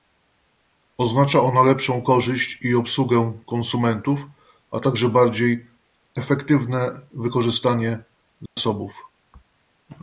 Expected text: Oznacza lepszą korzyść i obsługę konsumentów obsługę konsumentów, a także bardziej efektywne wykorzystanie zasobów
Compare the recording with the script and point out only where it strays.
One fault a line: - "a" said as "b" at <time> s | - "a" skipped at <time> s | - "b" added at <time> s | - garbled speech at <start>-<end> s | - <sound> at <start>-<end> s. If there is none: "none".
- "ona" added at 1.4 s
- "obsługę konsumentów" skipped at 4.2 s
- dropout at 8.5-8.6 s